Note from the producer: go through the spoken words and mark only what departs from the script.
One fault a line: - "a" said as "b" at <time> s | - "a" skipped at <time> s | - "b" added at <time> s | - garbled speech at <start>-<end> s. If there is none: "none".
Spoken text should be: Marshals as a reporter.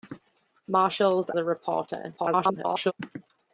- "as" skipped at 1.3 s
- garbled speech at 2.2-2.9 s